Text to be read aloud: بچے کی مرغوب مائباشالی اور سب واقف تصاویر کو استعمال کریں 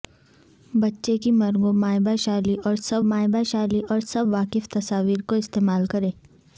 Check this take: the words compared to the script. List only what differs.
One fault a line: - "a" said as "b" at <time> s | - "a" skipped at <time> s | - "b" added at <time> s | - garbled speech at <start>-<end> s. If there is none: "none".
- "مائباشالی اور سب" added at 3.0 s